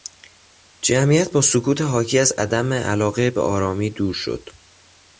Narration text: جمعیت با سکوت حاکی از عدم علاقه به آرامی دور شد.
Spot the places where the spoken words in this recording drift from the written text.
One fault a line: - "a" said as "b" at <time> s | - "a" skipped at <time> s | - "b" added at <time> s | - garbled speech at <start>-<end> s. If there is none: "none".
none